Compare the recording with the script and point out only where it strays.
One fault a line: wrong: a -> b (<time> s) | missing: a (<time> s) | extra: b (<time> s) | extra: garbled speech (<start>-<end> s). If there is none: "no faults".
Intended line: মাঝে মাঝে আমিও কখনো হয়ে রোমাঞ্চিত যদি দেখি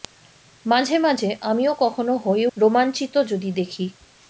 no faults